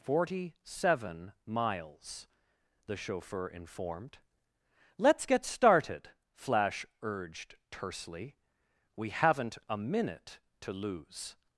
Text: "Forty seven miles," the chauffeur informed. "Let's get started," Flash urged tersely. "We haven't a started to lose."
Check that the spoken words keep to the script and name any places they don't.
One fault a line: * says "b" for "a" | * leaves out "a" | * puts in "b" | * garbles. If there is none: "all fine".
* says "minute" for "started"